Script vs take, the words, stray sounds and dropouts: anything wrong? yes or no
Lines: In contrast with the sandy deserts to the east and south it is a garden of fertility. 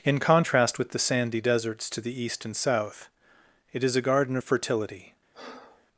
yes